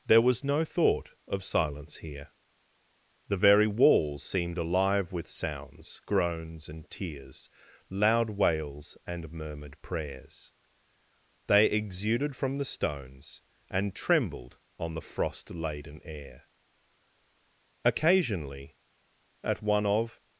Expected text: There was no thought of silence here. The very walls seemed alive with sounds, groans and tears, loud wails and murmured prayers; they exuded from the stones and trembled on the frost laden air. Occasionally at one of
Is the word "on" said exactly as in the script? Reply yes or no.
yes